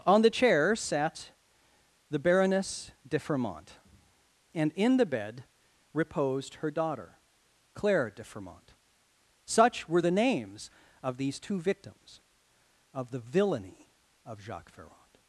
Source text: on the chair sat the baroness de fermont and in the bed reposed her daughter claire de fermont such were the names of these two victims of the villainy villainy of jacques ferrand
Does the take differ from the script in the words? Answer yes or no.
yes